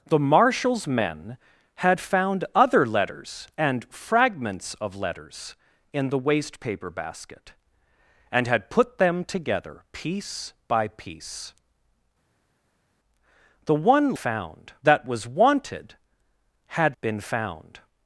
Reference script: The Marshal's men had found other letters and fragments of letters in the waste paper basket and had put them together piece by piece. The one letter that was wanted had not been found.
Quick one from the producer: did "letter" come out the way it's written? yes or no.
no